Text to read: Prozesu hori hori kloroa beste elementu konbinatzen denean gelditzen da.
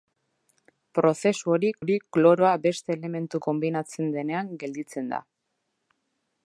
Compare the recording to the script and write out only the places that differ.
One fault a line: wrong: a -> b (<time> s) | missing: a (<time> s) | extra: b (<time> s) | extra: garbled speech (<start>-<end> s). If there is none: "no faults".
no faults